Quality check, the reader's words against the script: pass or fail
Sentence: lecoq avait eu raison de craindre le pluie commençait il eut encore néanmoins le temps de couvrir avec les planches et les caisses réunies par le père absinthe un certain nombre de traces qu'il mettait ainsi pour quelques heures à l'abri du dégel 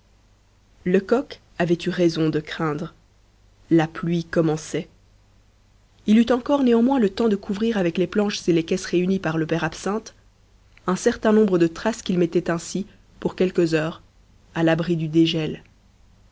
fail